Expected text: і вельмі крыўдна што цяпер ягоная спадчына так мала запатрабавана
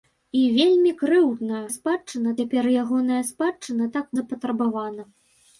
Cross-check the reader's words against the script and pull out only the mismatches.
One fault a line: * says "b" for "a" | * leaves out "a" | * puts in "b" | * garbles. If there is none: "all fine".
* says "спадчына" for "што"
* leaves out "мала"